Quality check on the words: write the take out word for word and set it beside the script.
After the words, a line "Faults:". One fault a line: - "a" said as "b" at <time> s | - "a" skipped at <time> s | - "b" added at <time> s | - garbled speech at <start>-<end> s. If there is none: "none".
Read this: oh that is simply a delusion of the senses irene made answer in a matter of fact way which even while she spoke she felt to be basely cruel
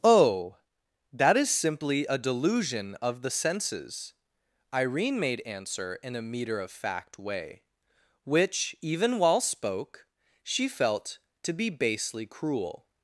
oh that is simply a delusion of the senses irene made answer in a meter of fact way which even while spoke she felt to be basely cruel
Faults:
- "matter" said as "meter" at 6.2 s
- "she" skipped at 9.4 s